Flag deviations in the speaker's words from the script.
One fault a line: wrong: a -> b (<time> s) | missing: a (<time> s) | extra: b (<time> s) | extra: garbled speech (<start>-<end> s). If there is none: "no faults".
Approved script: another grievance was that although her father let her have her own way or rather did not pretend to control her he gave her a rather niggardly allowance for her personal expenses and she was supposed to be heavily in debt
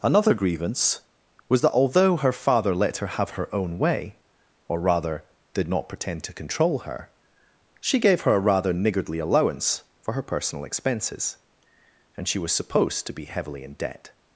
wrong: he -> she (7.8 s)